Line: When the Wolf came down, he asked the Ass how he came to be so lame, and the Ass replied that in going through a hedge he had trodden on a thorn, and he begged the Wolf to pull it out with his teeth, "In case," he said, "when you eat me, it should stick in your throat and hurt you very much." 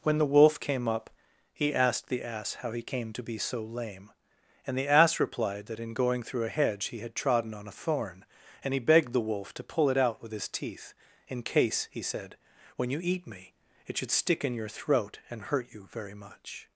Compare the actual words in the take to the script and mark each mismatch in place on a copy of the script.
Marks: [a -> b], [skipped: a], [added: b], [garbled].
When the Wolf came [down, -> up] he asked the Ass how he came to be so lame, and the Ass replied that in going through a hedge he had trodden on a thorn, and he begged the Wolf to pull it out with his teeth, "In case," he said, "when you eat me, it should stick in your throat and hurt you very much."